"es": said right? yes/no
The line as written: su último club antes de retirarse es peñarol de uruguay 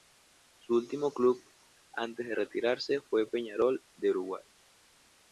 no